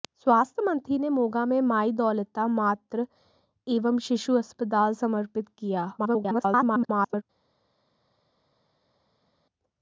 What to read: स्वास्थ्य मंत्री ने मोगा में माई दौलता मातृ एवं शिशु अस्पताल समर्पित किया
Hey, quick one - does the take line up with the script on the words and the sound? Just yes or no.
no